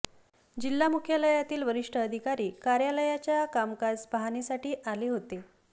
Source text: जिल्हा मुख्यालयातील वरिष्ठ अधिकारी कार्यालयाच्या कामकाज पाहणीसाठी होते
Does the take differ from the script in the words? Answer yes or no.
yes